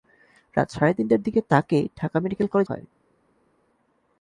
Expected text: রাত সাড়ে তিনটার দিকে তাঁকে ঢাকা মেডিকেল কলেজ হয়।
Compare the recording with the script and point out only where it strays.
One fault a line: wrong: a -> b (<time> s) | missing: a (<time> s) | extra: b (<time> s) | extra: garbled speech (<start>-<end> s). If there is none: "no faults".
no faults